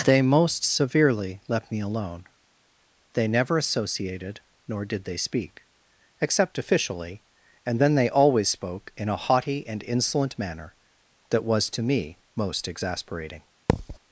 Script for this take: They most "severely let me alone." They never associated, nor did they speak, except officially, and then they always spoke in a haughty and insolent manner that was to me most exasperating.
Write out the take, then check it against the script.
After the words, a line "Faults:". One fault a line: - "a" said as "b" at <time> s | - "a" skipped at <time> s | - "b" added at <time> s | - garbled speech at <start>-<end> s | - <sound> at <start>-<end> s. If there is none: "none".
They most "severely left me alone." They never associated, nor did they speak, except officially, and then they always spoke in a haughty and insolent manner that was to me most exasperating.
Faults:
- "let" said as "left" at 1.5 s
- thud at 13.7-14.0 s